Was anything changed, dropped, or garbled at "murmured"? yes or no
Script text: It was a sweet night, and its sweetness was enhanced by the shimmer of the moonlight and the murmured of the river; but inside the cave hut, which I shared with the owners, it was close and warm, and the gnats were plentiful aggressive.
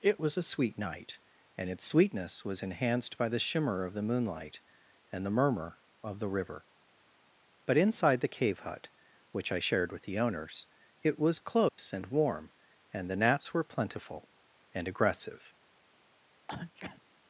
yes